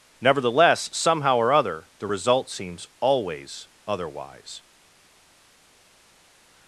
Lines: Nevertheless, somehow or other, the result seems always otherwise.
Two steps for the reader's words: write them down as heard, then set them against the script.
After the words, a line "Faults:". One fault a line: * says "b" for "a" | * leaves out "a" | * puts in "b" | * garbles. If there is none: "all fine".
Nevertheless, somehow or other, the result seems always otherwise.
Faults:
all fine